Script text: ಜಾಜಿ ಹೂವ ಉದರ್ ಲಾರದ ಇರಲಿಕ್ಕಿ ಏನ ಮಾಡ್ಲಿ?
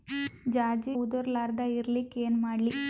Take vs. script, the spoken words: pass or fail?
fail